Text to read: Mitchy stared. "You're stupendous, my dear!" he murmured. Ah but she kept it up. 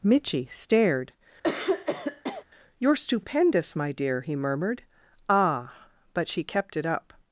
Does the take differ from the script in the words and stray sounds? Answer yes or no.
yes